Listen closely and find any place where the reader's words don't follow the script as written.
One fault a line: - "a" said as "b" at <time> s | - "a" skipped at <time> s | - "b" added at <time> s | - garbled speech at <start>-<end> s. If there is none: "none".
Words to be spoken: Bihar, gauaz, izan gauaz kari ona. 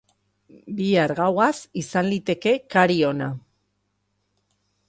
- "gauaz" said as "liteke" at 2.1 s